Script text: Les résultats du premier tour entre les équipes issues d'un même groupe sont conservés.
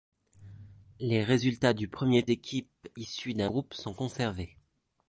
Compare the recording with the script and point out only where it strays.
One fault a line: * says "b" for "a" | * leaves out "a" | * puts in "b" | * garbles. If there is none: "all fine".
* leaves out "tour entre les"
* leaves out "même"